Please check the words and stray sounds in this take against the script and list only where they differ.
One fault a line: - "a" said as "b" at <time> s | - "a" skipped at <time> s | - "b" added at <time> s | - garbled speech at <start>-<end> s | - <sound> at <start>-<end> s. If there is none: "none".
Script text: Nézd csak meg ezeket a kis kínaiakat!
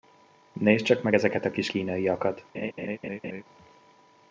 - laugh at 2.5-3.4 s